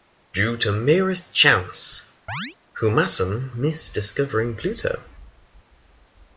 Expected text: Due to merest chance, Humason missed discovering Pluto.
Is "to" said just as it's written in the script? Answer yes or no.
yes